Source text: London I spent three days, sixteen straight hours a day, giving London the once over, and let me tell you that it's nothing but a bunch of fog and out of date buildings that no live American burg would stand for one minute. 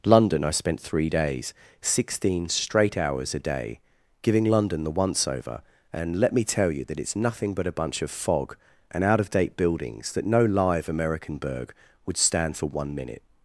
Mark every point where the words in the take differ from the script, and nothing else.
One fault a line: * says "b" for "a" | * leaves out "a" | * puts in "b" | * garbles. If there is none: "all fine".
all fine